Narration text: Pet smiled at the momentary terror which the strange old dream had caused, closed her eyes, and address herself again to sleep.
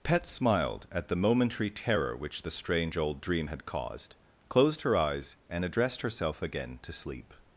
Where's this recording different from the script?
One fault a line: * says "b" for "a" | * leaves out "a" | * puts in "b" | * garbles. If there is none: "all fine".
* says "addressed" for "address"